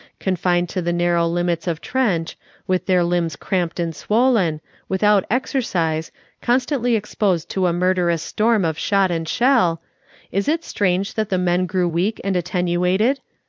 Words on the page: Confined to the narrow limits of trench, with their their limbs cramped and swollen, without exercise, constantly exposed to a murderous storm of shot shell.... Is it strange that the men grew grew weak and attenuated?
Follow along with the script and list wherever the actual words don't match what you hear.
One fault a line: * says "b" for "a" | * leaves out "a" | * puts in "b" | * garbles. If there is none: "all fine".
* leaves out "their"
* puts in "and"
* leaves out "grew"